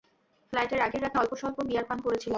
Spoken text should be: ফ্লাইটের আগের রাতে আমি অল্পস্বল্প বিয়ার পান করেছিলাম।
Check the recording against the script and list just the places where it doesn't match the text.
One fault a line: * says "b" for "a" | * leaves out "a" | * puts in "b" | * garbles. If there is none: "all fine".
* leaves out "আমি"